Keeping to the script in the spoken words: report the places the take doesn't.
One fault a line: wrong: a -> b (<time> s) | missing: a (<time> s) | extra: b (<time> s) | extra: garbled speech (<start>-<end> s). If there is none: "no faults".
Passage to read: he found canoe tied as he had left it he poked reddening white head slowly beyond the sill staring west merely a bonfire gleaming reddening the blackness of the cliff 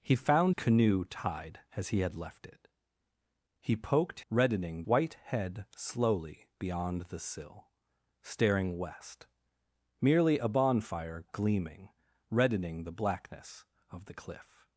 no faults